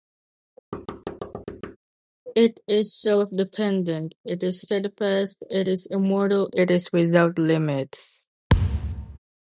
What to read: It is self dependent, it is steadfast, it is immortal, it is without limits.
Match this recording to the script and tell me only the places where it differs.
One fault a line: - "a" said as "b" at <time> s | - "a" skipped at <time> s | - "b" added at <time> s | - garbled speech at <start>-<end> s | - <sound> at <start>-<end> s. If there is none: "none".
- thud at 0.7-1.8 s
- thud at 8.5-9.2 s